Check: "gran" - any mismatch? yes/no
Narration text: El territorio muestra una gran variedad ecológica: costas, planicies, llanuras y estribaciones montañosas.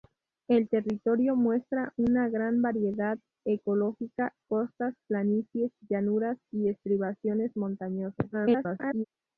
no